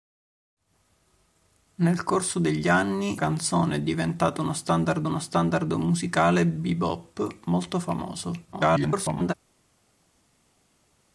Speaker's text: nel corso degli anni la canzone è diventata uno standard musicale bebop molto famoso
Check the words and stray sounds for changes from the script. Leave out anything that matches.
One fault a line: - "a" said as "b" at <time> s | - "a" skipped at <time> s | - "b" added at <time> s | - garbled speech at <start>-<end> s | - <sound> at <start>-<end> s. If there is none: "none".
- "la" skipped at 3.2 s
- "uno standard" added at 5.1 s
- garbled speech at 8.5-9.3 s